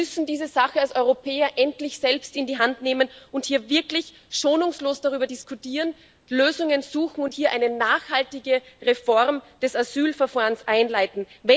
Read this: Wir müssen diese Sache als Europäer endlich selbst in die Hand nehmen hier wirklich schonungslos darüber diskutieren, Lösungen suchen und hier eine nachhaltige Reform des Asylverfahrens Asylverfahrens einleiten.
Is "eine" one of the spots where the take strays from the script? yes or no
no